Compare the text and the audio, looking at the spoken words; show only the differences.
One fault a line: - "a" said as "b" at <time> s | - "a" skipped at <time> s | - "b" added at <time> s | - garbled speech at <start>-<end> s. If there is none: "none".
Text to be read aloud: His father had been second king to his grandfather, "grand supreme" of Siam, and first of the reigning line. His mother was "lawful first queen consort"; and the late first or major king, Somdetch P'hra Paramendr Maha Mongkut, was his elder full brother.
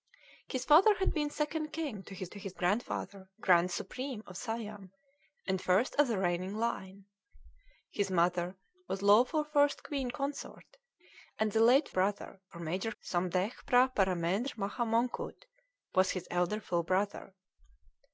- "to his" added at 2.3 s
- "first" said as "brother" at 11.9 s
- "king" skipped at 12.9 s